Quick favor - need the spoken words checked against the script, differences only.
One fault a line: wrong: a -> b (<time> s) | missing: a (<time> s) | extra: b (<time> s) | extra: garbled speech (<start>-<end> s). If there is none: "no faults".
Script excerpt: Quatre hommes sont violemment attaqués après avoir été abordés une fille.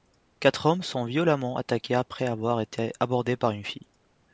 extra: par (3.4 s)